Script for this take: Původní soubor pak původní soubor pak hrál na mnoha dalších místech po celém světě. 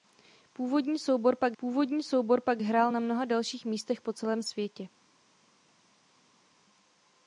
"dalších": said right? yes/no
yes